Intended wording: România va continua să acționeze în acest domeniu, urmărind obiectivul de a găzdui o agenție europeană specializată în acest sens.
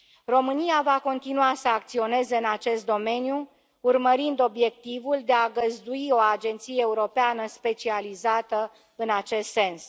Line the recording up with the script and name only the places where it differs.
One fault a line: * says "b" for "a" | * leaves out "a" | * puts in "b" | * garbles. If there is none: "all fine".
all fine